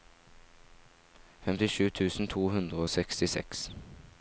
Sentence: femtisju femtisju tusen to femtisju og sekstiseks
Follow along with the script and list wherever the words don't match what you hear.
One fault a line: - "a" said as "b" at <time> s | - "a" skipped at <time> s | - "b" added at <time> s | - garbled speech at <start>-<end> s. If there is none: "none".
- "femtisju" skipped at 1.9 s
- "femtisju" said as "hundre" at 2.5 s